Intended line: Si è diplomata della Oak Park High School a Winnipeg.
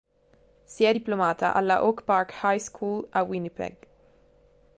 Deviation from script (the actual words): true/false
true